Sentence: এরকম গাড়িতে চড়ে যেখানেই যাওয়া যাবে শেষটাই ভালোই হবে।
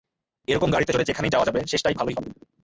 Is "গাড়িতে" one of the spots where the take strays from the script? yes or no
no